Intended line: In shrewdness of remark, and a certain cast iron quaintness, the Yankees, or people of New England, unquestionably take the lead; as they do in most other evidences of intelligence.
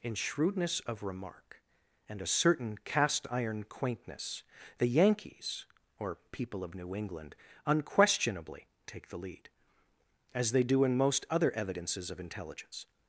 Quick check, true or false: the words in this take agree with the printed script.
true